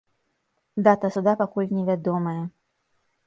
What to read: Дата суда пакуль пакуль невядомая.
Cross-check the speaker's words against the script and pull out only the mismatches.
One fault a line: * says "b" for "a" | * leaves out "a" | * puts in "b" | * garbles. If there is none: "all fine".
* leaves out "пакуль"